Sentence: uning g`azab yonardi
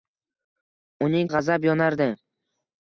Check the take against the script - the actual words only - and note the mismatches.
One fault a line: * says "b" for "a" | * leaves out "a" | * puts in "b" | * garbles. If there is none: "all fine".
all fine